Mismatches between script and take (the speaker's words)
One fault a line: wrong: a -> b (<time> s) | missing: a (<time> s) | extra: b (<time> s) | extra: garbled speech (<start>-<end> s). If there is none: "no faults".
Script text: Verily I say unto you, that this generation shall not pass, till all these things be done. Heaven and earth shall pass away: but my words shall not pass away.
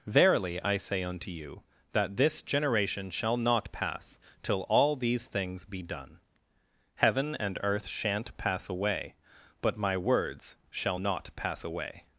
wrong: shall -> shan't (7.9 s)